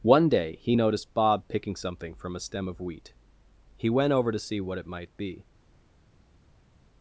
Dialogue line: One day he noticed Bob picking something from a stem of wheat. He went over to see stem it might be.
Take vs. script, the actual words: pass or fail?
fail